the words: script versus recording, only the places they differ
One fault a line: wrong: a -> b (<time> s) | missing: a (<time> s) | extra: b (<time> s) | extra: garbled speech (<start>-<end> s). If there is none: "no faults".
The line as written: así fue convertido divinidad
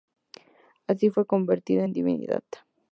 extra: en (1.8 s)